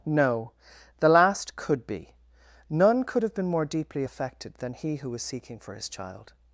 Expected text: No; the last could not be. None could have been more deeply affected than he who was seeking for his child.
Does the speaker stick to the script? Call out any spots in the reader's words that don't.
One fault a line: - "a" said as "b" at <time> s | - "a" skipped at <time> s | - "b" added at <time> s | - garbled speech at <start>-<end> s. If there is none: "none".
- "not" skipped at 1.9 s